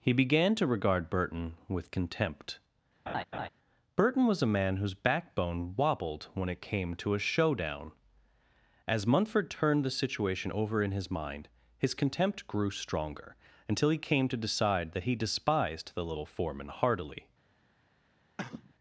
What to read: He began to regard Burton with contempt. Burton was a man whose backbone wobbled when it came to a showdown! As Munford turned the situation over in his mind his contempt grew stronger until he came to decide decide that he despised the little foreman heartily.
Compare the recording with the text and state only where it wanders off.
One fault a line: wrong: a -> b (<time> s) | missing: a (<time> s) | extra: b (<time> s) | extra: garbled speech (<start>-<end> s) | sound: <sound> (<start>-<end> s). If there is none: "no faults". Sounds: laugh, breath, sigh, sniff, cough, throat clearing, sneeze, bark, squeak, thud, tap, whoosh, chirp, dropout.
sound: laugh (3.1-3.5 s)
missing: decide (14.9 s)
sound: cough (18.4-18.7 s)